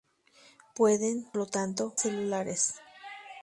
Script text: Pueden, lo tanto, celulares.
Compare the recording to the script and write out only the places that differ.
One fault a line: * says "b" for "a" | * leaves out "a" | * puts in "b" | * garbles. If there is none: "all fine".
all fine